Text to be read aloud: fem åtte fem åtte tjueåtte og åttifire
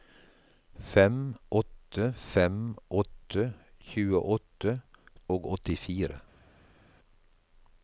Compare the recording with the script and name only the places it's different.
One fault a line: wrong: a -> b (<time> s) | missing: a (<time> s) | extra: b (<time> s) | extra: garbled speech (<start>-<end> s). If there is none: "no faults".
no faults